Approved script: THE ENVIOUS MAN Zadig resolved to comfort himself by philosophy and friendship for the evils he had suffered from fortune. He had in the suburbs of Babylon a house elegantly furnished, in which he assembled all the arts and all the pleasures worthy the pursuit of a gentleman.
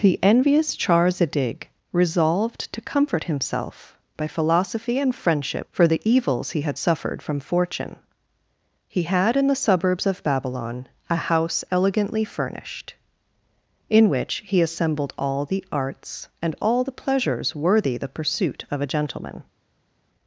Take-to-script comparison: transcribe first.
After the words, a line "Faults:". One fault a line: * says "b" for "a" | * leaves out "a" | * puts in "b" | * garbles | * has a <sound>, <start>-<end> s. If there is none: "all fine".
THE ENVIOUS Char Zadig resolved to comfort himself by philosophy and friendship for the evils he had suffered from fortune. He had in the suburbs of Babylon a house elegantly furnished, in which he assembled all the arts and all the pleasures worthy the pursuit of a gentleman.
Faults:
* says "Char" for "MAN"